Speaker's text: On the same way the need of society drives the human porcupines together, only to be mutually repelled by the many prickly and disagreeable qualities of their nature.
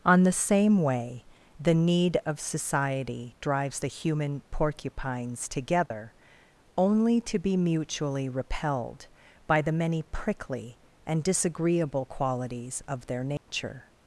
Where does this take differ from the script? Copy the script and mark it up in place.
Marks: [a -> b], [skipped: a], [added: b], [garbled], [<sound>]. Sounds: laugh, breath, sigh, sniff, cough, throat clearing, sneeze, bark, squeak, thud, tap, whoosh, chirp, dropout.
On the same way the need of society drives the human porcupines together, [dropout] only to be mutually repelled by the many prickly and disagreeable qualities of their nature. [dropout]